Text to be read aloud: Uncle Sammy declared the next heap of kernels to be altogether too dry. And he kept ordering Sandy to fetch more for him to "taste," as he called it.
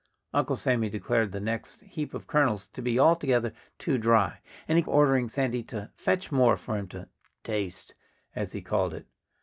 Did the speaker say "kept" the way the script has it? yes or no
no